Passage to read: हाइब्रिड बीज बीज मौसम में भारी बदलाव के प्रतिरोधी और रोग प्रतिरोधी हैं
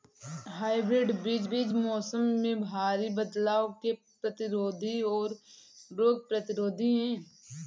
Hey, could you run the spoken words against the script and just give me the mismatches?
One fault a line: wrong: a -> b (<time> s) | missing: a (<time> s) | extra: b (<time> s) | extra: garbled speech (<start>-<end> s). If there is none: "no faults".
no faults